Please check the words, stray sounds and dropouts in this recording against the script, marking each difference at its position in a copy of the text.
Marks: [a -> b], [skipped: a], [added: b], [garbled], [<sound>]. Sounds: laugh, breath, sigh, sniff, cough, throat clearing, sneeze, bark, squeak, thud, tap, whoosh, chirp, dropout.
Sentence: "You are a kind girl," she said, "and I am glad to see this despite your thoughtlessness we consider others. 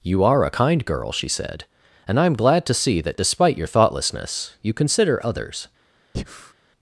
"You are a kind girl," she said, "and I am glad to see [this -> that] despite your thoughtlessness [we -> you] consider others. [breath]